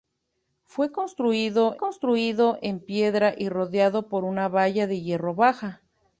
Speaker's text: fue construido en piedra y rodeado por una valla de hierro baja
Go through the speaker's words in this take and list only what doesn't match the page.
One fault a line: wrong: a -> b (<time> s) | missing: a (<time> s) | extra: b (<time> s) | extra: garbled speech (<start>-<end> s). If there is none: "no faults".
extra: construido (1.8 s)